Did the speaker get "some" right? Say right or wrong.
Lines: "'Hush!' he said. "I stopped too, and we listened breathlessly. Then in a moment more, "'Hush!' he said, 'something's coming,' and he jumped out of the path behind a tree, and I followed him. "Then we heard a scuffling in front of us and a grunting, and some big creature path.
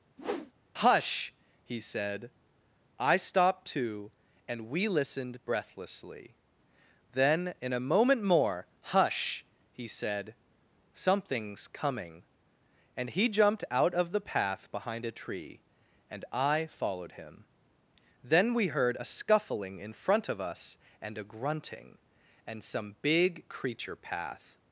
right